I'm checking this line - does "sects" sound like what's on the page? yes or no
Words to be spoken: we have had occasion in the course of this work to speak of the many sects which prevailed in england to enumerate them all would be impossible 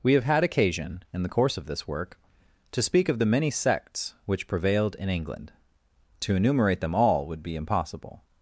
yes